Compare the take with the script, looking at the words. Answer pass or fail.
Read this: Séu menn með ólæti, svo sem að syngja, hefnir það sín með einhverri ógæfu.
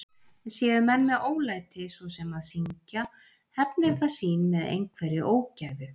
pass